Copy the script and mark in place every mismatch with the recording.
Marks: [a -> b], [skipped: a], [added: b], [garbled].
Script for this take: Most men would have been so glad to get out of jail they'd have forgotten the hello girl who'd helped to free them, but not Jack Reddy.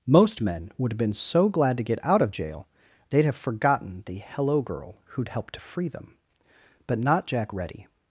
Most men would have been so glad to get out of jail they'd have forgotten the hello girl who'd helped to free them, but not Jack Reddy.